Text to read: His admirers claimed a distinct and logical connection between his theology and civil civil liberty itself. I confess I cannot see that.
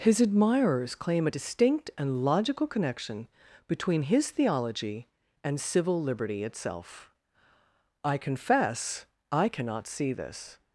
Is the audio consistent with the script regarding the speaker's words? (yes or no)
no